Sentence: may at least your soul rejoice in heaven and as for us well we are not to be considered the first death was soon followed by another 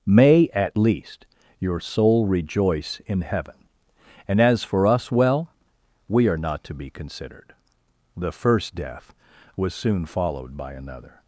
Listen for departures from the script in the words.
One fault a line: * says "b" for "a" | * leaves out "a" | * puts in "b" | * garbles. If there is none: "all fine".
all fine